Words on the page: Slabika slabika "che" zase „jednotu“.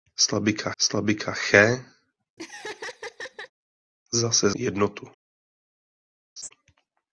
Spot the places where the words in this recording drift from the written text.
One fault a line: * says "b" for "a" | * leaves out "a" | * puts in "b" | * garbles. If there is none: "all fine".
all fine